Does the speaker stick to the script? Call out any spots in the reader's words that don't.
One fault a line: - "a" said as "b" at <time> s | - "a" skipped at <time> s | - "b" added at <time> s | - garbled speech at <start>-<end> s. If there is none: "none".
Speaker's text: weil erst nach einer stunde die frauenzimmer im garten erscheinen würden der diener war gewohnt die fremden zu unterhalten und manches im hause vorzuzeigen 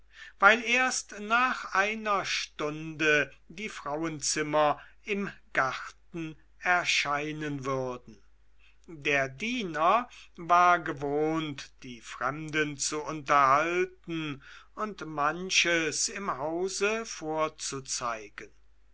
none